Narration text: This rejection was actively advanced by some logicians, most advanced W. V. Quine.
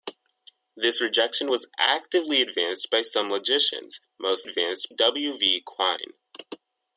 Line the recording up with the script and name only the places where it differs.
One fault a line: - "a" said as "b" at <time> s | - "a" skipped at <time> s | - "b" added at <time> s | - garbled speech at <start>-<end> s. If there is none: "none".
none